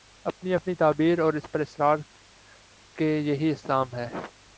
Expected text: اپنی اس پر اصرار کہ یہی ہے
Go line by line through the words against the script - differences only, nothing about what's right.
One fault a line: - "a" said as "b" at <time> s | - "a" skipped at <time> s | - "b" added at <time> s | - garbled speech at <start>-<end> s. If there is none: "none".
- "اپنی تعبیر اور" added at 0.5 s
- "اسلام" added at 3.5 s